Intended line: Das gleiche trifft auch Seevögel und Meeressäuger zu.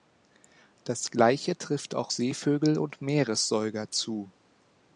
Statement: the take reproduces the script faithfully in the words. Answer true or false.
true